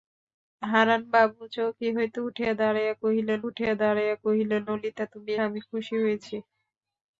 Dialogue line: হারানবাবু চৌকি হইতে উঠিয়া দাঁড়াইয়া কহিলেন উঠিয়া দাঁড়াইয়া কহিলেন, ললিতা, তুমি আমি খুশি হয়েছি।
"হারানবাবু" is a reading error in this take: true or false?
false